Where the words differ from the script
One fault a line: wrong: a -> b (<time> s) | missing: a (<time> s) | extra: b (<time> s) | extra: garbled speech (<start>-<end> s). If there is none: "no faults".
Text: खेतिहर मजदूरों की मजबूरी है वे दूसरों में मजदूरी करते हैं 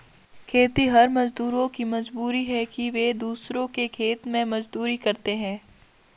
extra: कि (2.7 s)
extra: के खेत (3.8 s)